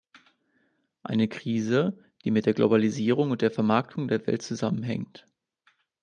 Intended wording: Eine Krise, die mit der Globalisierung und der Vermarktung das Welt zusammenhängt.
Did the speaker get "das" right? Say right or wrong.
wrong